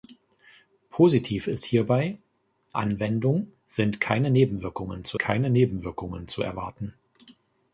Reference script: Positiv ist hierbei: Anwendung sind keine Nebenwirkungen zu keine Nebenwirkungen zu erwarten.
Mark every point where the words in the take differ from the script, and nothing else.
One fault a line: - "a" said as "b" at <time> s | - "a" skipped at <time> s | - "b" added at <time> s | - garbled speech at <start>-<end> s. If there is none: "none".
none